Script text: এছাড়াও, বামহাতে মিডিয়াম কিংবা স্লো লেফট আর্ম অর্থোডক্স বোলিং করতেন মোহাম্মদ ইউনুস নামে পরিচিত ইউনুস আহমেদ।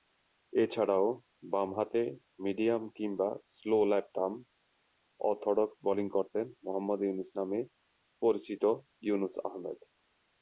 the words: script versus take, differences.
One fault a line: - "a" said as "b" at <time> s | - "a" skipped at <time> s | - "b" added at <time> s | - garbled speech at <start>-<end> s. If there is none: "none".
none